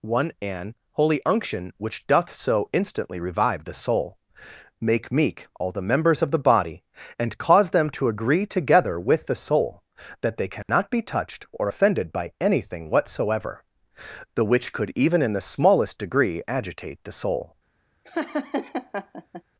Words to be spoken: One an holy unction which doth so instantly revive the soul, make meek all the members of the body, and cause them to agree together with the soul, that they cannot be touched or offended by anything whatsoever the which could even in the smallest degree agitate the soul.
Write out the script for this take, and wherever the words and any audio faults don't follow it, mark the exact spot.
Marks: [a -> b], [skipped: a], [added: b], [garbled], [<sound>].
One an holy unction which doth so instantly revive the soul, make meek all the members of the body, and cause them to agree together with the soul, that they cannot [dropout] be touched or offended by anything whatsoever the which could even in the smallest degree agitate the soul. [laugh]